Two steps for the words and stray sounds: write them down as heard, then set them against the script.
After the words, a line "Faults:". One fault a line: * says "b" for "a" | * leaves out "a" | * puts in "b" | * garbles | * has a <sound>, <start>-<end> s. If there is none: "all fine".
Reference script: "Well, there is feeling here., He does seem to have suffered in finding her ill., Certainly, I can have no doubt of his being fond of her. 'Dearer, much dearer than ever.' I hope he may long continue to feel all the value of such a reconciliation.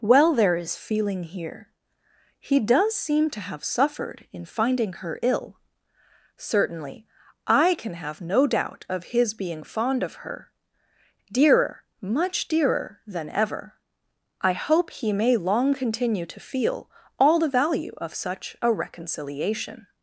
"Well, there is feeling here., He does seem to have suffered in finding her ill., Certainly, I can have no doubt of his being fond of her. 'Dearer, much dearer than ever.' I hope he may long continue to feel all the value of such a reconciliation.
Faults:
all fine